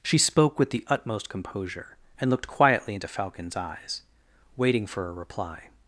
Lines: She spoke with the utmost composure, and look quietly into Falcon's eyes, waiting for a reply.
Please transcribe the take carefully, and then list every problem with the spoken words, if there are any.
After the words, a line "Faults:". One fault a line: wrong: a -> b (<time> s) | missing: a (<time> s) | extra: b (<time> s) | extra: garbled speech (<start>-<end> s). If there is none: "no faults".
She spoke with the utmost composure, and looked quietly into Falcon's eyes, waiting for a reply.
Faults:
wrong: look -> looked (2.3 s)